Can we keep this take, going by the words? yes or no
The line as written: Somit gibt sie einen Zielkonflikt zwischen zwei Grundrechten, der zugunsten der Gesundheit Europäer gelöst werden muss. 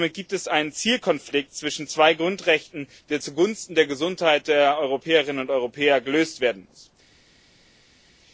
no